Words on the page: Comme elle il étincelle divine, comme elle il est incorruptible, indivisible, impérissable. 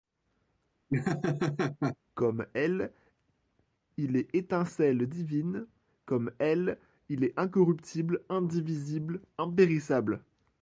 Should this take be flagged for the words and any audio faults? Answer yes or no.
yes